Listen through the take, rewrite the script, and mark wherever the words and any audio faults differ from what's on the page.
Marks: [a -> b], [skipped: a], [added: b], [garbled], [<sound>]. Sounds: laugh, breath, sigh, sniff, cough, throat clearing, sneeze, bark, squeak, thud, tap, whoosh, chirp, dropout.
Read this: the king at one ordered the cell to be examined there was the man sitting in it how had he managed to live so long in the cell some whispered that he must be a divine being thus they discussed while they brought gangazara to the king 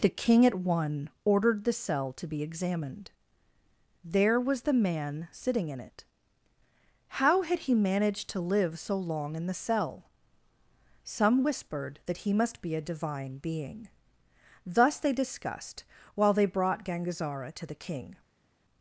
the king at one ordered the cell to be examined there was the man sitting in it how had he managed to live so long in the cell some whispered that he must be a divine being thus they discussed while they brought gangazara to the king